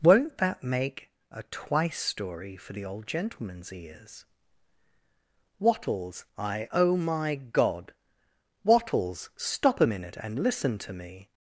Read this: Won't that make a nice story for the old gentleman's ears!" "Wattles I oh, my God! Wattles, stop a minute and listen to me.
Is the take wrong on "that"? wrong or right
right